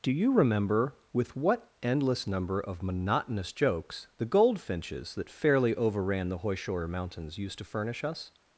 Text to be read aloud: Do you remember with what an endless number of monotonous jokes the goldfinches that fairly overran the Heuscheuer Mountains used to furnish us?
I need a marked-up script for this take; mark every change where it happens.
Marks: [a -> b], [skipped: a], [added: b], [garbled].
Do you remember with what [skipped: an] endless number of monotonous jokes the goldfinches that fairly overran the Heuscheuer Mountains used to furnish us?